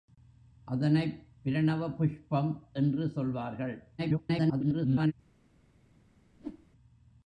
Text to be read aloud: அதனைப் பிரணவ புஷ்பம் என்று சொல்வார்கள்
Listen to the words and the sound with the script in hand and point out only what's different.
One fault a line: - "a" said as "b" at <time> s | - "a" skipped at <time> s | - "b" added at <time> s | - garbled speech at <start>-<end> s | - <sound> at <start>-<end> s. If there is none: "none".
- garbled speech at 4.0-5.1 s
- whoosh at 6.3-6.7 s